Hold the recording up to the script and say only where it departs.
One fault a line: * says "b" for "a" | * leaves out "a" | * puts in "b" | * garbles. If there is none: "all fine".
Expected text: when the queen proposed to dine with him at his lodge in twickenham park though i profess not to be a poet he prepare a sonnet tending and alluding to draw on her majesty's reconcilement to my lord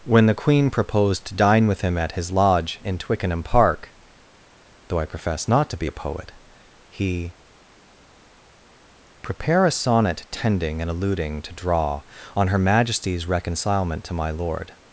all fine